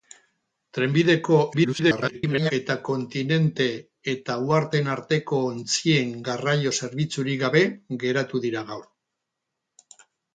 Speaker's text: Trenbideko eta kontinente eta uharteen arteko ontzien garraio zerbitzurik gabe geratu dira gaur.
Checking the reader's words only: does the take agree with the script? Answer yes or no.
no